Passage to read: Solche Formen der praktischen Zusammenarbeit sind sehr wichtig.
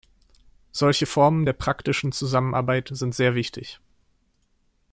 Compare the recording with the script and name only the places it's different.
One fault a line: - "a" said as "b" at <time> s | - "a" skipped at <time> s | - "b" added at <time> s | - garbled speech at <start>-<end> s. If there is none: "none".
none